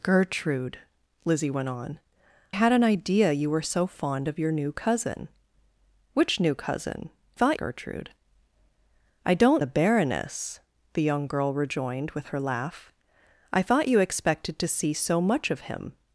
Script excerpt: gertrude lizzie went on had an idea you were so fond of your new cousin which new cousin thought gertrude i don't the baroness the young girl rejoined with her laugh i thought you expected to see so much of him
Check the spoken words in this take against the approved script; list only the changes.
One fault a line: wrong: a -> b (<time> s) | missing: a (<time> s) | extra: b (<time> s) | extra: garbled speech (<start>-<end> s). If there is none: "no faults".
no faults